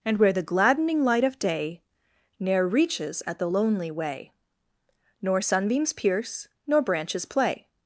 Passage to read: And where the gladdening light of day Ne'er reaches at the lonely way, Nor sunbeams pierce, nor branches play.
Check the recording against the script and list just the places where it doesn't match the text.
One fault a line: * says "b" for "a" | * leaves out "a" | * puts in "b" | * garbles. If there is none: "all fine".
all fine